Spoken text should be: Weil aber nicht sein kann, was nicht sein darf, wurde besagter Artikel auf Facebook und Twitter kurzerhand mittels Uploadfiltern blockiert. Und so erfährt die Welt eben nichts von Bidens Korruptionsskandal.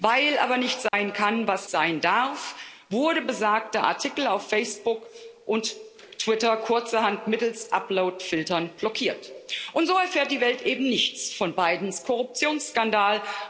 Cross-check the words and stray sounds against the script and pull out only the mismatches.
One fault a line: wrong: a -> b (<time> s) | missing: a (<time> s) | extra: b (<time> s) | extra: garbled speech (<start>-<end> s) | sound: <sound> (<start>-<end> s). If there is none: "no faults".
sound: dropout (0.9-0.9 s)
missing: nicht (1.7 s)